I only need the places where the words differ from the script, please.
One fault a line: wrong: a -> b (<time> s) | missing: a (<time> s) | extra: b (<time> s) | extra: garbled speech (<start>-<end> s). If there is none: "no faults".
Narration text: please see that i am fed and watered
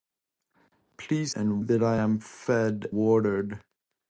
wrong: see -> and (1.3 s)
missing: and (2.9 s)